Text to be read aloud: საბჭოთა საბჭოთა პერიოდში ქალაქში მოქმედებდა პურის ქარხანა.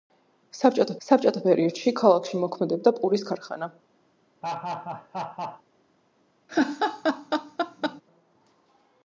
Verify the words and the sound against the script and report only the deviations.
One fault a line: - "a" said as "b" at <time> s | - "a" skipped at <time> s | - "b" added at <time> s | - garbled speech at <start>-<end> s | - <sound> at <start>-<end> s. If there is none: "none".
- laugh at 4.4-5.6 s
- laugh at 6.5-8.0 s